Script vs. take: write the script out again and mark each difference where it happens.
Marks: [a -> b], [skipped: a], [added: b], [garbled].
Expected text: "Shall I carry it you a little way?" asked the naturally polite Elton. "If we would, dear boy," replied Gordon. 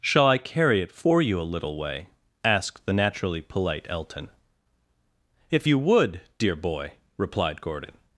"Shall I carry it [added: for] you a little way?" asked the naturally polite Elton. "If [we -> you] would, dear boy," replied Gordon.